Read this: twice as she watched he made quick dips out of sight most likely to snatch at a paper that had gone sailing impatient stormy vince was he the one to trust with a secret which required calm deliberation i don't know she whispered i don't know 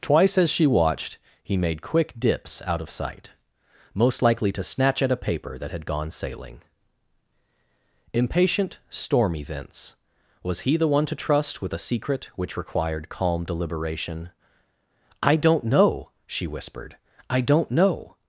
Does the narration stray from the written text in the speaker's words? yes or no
no